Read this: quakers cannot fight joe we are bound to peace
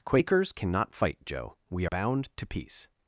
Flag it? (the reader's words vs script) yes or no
yes